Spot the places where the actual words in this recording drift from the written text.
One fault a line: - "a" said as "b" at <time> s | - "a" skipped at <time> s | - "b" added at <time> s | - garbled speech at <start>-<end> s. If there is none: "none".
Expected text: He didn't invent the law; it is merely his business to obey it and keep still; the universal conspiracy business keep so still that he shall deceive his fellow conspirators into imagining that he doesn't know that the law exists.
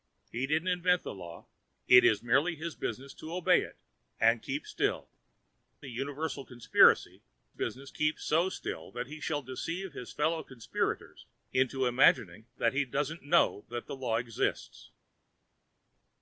none